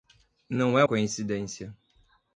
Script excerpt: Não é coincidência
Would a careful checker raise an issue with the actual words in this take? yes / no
no